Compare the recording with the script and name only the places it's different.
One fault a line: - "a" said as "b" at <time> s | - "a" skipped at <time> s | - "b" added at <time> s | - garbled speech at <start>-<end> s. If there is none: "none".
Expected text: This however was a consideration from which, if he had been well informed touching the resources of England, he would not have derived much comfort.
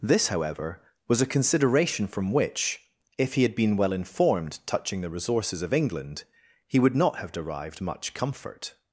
none